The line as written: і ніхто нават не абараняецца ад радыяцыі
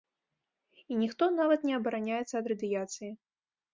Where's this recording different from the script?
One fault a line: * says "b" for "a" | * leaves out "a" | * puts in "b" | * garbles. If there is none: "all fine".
all fine